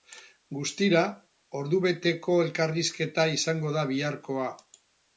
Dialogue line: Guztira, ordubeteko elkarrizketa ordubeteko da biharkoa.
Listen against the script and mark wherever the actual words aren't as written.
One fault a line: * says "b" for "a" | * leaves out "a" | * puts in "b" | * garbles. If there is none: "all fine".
* says "izango" for "ordubeteko"